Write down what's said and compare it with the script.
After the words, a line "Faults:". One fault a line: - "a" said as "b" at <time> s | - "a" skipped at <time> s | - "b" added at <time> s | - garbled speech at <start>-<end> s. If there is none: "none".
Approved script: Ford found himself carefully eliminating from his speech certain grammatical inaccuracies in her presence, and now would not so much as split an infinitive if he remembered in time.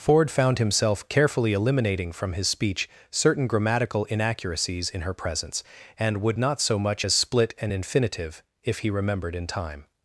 Ford found himself carefully eliminating from his speech certain grammatical inaccuracies in her presence, and would not so much as split an infinitive if he remembered in time.
Faults:
- "now" skipped at 6.2 s